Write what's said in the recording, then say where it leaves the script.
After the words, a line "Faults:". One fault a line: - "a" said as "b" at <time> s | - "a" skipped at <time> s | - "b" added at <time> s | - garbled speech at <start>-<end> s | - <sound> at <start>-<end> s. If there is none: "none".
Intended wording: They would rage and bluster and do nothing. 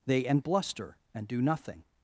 They and bluster and do nothing.
Faults:
- "would rage" skipped at 0.2 s